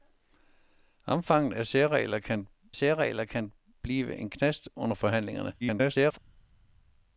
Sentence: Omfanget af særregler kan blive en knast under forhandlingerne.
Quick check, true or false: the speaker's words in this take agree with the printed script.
false